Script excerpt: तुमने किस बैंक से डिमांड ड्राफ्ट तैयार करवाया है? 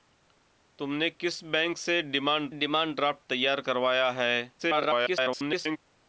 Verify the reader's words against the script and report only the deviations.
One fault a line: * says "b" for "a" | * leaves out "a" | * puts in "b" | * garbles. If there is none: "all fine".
* puts in "डिमांड"
* garbles